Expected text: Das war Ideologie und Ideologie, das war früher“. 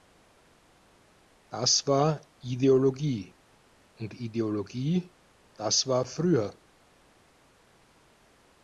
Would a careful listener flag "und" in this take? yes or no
no